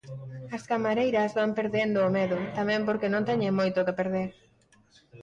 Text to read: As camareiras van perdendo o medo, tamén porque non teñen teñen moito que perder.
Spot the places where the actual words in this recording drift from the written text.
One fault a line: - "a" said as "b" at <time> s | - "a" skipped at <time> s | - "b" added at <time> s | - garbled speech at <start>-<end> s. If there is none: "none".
- "teñen" skipped at 3.6 s